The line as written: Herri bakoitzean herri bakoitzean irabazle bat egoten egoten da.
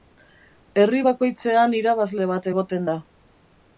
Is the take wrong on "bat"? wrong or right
right